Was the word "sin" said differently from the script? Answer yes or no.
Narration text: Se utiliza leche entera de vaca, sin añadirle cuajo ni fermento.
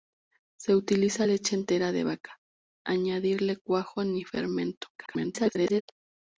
yes